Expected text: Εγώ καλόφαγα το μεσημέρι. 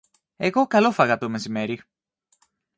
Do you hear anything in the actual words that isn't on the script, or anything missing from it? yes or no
no